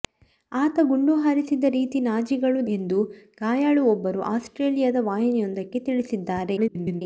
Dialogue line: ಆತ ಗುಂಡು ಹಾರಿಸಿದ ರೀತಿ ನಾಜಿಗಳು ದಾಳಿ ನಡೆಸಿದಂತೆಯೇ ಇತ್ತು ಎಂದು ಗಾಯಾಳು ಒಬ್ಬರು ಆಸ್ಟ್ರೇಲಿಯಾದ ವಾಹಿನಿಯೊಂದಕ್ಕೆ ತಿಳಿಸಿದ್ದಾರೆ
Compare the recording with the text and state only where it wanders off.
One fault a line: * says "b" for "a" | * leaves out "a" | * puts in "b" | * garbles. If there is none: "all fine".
* leaves out "ದಾಳಿ ನಡೆಸಿದಂತೆಯೇ ಇತ್ತು"
* garbles